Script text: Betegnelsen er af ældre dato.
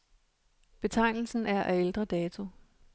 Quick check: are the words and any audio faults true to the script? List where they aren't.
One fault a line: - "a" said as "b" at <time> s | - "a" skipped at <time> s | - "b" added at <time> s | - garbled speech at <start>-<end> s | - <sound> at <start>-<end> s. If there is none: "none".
none